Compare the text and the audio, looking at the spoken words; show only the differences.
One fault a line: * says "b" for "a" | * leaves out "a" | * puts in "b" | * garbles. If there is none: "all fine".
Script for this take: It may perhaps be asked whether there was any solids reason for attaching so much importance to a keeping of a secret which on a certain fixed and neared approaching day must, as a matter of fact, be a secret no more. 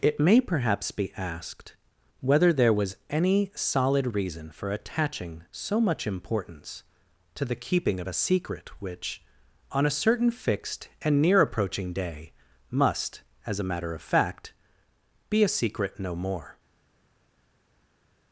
* says "solid" for "solids"
* says "the" for "a"
* says "near" for "neared"